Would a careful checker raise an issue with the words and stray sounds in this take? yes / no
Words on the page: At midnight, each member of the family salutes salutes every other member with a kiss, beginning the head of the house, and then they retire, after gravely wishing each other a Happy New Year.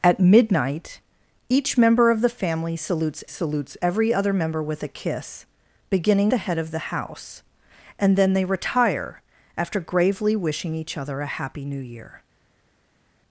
no